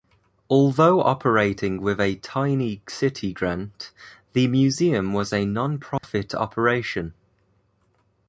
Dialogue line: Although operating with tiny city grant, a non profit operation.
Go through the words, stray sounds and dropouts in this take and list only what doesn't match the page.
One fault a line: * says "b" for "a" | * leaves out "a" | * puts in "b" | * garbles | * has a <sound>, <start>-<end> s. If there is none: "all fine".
* puts in "a"
* puts in "the museum was"
* has a dropout, 6.0-6.0 s